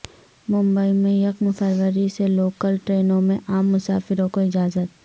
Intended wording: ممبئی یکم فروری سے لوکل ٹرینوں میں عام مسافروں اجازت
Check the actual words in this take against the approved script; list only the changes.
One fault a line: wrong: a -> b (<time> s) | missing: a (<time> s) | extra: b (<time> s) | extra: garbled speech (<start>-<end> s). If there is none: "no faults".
extra: میں (0.9 s)
extra: کو (4.3 s)